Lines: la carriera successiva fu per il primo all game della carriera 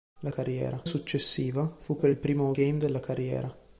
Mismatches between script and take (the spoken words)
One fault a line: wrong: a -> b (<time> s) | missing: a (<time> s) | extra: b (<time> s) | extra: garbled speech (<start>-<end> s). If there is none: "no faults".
no faults